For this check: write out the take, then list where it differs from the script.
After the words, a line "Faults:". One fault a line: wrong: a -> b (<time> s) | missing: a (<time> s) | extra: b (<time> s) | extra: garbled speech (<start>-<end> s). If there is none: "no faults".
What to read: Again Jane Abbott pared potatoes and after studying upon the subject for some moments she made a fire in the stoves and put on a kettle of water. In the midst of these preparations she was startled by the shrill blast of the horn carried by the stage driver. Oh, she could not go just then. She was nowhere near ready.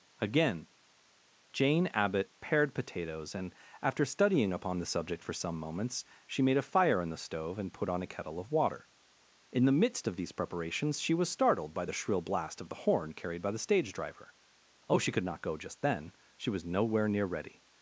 Again Jane Abbott pared potatoes and after studying upon the subject for some moments she made a fire in the stove and put on a kettle of water. In the midst of these preparations she was startled by the shrill blast of the horn carried by the stage driver. Oh, she could not go just then. She was nowhere near ready.
Faults:
wrong: stoves -> stove (7.2 s)